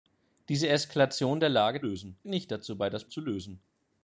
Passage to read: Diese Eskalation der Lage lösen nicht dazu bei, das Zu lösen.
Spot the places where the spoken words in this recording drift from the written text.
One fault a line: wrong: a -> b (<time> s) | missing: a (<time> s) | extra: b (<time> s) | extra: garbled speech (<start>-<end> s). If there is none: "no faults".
no faults